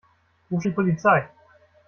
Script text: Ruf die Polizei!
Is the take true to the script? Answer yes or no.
yes